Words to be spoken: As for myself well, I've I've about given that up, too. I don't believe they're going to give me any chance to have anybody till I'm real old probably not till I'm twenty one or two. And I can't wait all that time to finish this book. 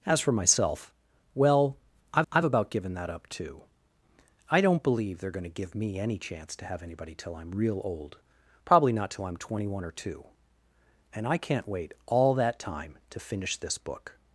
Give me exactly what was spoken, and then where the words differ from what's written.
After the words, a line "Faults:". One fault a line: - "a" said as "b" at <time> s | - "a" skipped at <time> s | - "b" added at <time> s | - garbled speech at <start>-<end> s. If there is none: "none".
As for myself well, I've I've about given that up, too. I don't believe they're going to give me any chance to have anybody till I'm real old probably not till I'm twenty one or two. And I can't wait all that time to finish this book.
Faults:
none